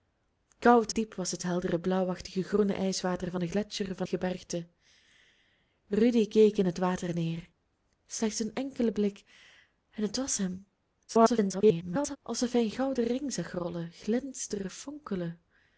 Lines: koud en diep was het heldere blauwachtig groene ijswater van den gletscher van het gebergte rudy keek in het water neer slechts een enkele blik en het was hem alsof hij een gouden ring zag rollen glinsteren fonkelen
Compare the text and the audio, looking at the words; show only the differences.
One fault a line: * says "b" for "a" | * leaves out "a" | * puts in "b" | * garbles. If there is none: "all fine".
* leaves out "en"
* leaves out "het"
* garbles